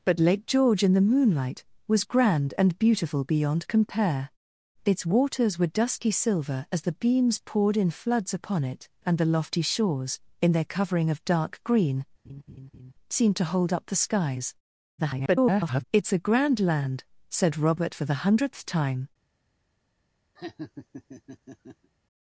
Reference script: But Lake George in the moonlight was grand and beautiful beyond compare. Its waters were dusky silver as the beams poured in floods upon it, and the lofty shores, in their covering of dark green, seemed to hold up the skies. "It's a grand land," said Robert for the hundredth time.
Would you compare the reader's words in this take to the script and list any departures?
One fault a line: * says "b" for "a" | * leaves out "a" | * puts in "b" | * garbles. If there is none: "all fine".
* garbles